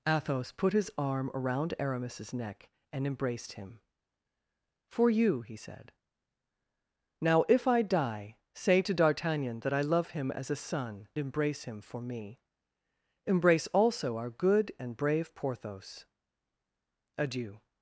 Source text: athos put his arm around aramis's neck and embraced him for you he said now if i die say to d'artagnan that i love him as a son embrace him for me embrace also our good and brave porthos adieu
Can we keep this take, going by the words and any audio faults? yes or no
yes